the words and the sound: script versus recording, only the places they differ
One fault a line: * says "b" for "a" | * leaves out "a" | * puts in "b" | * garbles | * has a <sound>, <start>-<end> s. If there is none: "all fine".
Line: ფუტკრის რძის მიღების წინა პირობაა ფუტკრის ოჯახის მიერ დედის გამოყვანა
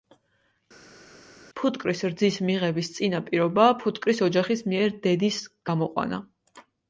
all fine